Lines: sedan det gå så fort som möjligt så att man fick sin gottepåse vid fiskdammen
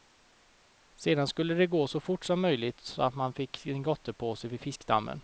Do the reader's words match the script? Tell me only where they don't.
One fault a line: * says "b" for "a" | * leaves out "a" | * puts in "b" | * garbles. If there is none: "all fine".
* puts in "skulle"